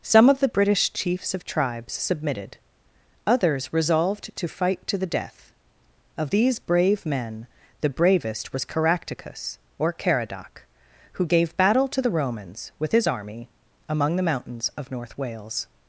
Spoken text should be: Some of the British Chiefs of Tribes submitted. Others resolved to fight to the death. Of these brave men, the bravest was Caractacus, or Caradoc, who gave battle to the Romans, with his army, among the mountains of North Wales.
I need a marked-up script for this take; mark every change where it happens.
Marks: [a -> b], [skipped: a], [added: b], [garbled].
Some of the British Chiefs of Tribes submitted. Others resolved to fight to the death. Of these brave men, the bravest was Caractacus, or Caradoc, who gave battle to the Romans, with his army, among the mountains of North Wales.